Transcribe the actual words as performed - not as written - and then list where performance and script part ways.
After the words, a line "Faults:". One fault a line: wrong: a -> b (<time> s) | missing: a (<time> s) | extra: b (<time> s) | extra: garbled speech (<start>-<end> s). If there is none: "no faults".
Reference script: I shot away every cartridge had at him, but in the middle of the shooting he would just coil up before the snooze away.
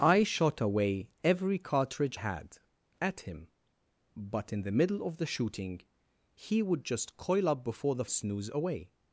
I shot away every cartridge had at him, but in the middle of the shooting he would just coil up before the snooze away.
Faults:
no faults